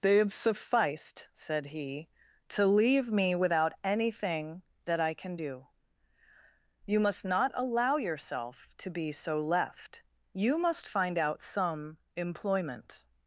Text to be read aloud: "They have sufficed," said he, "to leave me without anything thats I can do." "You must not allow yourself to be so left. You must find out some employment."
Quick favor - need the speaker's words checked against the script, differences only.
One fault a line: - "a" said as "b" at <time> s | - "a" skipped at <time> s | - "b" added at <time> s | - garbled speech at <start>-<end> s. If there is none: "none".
- "thats" said as "that" at 4.8 s